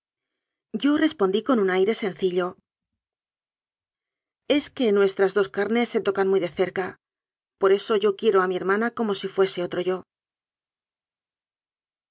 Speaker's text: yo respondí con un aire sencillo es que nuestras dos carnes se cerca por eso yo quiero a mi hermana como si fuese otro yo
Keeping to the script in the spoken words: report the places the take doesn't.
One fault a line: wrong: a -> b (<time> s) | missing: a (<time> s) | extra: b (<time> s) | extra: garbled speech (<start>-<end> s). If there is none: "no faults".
extra: tocan muy de (6.0 s)